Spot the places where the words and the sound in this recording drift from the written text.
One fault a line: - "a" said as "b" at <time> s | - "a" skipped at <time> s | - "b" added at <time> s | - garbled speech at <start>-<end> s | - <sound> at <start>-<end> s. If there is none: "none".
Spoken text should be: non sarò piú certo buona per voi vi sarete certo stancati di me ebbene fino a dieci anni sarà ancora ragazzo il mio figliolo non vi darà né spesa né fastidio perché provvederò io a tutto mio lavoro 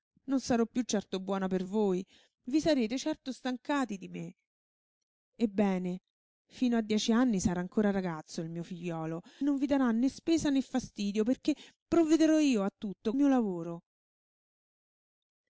none